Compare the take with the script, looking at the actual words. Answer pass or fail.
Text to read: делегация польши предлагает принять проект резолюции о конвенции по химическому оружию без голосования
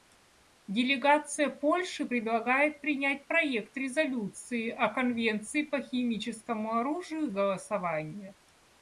fail